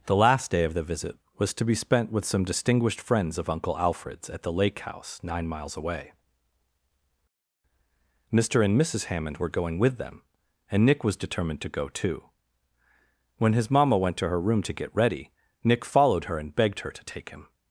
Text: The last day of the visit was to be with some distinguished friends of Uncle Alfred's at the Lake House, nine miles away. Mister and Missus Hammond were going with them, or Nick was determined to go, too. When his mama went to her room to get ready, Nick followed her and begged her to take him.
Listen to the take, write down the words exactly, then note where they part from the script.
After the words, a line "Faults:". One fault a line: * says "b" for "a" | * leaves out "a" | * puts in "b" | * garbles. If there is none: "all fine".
The last day of the visit was to be spent with some distinguished friends of Uncle Alfred's at the Lake House, nine miles away. Mister and Missus Hammond were going with them, and Nick was determined to go, too. When his mama went to her room to get ready, Nick followed her and begged her to take him.
Faults:
* puts in "spent"
* says "and" for "or"